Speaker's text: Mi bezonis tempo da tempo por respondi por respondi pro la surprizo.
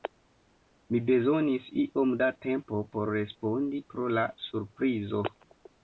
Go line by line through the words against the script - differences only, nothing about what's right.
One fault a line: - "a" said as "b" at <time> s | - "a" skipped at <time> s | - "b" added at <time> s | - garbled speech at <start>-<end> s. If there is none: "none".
- "tempo" said as "iom" at 1.8 s
- "por respondi" skipped at 3.8 s